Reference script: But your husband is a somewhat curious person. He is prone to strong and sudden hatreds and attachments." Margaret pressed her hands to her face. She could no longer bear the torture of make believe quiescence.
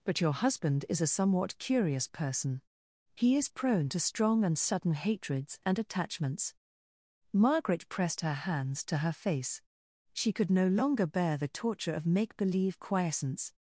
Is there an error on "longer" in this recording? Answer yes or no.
no